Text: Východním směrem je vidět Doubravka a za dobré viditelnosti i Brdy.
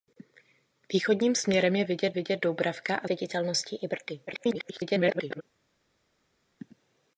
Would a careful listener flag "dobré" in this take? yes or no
yes